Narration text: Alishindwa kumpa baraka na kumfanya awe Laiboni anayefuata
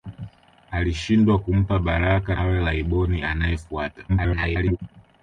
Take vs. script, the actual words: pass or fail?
fail